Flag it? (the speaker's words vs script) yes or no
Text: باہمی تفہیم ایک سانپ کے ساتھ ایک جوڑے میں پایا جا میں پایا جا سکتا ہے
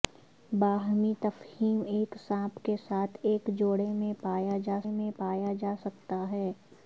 no